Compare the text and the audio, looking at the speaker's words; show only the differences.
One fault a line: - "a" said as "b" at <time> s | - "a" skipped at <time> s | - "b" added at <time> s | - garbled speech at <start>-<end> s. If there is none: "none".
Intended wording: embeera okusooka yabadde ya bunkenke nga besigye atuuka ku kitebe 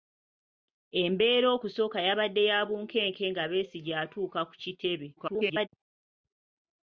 - garbled speech at 5.2-5.7 s